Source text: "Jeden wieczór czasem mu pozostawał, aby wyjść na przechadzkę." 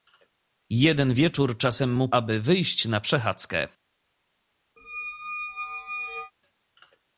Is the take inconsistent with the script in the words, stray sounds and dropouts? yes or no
yes